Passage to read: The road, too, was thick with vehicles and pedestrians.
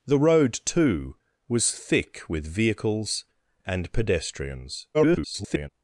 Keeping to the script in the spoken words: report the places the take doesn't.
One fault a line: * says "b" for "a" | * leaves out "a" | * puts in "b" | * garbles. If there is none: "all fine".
* garbles